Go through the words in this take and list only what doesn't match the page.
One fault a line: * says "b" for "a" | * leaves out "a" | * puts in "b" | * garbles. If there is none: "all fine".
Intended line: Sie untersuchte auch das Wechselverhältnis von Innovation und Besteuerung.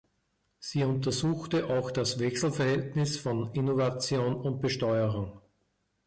all fine